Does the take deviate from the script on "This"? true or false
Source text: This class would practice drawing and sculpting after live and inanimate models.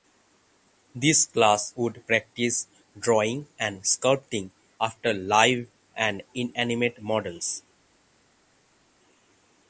false